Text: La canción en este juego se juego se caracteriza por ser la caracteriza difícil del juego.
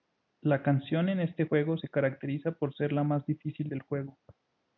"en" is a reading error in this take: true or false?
false